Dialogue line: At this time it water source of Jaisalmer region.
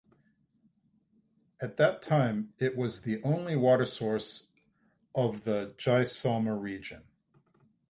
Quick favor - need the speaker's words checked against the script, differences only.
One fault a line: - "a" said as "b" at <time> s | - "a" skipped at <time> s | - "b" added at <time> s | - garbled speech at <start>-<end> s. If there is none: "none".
- "this" said as "that" at 1.8 s
- "was the only" added at 2.8 s
- "the" added at 5.4 s